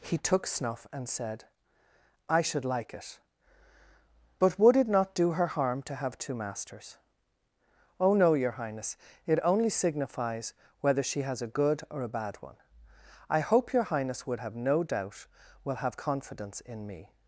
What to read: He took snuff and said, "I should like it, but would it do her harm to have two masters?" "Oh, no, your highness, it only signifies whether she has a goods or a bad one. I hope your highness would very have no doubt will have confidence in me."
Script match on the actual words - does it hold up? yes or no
no